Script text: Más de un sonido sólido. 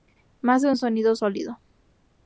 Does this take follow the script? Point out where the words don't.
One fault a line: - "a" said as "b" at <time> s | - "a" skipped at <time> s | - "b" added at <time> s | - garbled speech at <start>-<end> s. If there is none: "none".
none